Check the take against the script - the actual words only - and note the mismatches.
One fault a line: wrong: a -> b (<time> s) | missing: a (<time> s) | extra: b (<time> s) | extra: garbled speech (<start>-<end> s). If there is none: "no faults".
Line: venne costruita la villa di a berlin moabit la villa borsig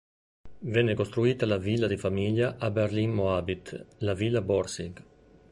extra: famiglia (2.0 s)